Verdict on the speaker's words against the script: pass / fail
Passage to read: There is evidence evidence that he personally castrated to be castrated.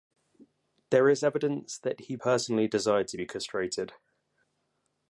fail